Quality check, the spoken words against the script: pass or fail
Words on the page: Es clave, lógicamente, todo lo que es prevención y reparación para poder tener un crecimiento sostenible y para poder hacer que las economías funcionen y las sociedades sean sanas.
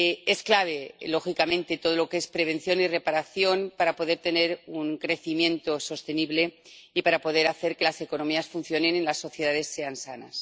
pass